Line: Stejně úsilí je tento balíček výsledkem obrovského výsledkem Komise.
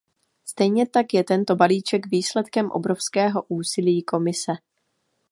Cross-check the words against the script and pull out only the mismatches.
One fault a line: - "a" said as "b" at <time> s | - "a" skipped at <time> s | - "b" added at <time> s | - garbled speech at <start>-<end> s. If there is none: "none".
- "úsilí" said as "tak" at 0.9 s
- "výsledkem" said as "úsilí" at 3.5 s